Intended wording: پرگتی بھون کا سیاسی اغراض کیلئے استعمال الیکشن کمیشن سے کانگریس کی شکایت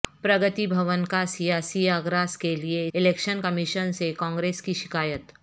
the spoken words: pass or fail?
fail